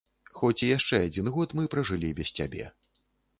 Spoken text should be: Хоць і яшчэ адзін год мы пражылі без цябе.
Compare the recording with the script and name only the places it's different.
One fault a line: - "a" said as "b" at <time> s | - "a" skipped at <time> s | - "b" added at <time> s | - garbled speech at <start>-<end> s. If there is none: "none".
none